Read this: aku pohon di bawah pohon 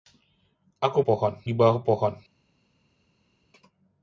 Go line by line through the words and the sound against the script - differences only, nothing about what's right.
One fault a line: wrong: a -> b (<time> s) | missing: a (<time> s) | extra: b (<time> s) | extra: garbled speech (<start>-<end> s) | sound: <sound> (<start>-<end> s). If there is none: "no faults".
no faults